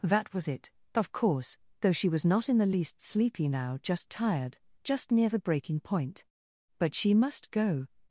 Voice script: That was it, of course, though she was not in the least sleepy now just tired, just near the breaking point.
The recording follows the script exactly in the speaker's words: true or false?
false